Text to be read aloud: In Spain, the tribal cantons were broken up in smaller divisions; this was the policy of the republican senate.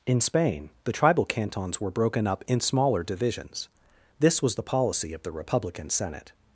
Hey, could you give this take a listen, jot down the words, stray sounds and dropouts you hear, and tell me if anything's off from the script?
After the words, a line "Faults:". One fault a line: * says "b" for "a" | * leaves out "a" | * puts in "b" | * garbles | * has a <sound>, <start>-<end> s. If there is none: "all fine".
In Spain, the tribal cantons were broken up in smaller divisions; this was the policy of the republican senate.
Faults:
all fine